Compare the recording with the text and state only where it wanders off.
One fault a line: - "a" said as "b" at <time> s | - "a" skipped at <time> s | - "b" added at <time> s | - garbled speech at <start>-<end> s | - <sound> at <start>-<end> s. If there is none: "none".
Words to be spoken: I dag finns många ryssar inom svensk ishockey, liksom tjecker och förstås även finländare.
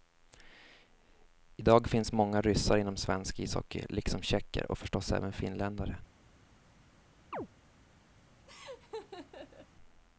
- chirp at 7.3-7.5 s
- laugh at 8.5-9.7 s